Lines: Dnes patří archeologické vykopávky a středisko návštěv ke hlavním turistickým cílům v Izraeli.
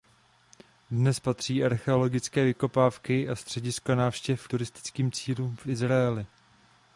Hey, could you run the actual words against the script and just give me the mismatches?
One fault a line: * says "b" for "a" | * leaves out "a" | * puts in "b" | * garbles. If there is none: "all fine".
* leaves out "ke hlavním"